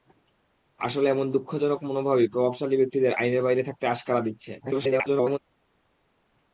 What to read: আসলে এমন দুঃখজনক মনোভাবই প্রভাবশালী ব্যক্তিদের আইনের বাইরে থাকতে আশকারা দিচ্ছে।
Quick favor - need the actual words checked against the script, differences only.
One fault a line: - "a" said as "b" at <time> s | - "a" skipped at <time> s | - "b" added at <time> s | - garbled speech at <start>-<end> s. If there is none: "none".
- garbled speech at 4.6-5.4 s